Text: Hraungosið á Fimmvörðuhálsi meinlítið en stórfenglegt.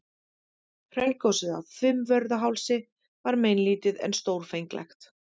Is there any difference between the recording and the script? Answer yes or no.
yes